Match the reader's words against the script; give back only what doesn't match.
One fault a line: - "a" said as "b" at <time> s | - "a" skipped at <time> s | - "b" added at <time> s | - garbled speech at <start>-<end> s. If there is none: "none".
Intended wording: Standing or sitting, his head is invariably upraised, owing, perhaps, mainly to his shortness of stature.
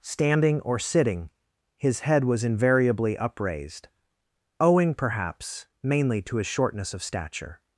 - "is" said as "was" at 2.2 s